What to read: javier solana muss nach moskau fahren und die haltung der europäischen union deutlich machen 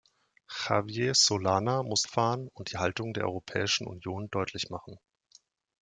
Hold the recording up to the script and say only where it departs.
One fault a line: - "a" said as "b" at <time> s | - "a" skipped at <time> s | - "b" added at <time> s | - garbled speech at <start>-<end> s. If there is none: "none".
- "nach moskau" skipped at 2.1 s